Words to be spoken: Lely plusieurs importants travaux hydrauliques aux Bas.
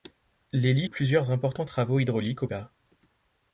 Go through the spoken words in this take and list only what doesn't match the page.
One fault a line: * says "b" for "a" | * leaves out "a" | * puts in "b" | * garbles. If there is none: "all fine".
all fine